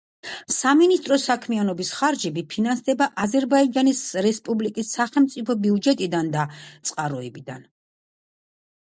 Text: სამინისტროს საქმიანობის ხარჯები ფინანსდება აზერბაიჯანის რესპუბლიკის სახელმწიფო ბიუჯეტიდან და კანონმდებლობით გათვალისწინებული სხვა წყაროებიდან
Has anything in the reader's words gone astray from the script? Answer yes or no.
yes